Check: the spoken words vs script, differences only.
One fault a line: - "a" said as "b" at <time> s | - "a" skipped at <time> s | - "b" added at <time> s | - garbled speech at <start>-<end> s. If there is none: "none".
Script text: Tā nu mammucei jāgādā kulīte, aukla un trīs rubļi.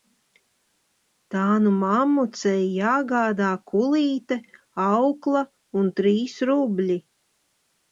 none